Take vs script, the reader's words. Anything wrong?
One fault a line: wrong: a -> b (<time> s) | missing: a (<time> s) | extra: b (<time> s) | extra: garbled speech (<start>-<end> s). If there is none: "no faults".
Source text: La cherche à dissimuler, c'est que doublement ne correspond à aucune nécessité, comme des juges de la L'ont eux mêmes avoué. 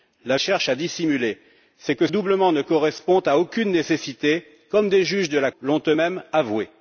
no faults